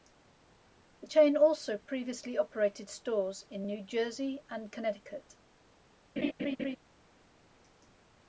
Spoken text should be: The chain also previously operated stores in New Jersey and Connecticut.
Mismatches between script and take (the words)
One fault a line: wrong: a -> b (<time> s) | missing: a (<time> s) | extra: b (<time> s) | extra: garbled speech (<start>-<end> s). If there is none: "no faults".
no faults